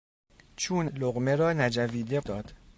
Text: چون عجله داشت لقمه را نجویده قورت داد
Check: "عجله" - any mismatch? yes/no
yes